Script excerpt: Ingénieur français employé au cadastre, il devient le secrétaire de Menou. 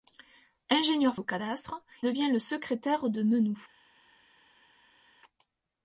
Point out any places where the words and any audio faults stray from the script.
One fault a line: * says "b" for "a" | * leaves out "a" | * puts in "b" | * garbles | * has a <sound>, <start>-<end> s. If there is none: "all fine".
* leaves out "français employé"
* leaves out "il"